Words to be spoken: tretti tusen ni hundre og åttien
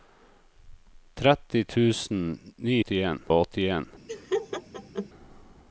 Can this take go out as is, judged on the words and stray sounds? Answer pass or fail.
fail